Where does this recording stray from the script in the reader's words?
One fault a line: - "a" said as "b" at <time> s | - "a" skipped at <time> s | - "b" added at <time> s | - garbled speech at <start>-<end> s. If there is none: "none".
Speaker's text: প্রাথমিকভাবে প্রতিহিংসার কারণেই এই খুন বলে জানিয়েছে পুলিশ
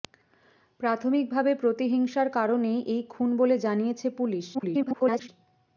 - garbled speech at 4.5-5.3 s